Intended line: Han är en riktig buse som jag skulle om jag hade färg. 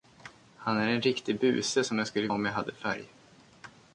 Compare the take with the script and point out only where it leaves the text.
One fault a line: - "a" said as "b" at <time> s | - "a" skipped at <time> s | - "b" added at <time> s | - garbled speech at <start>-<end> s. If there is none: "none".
none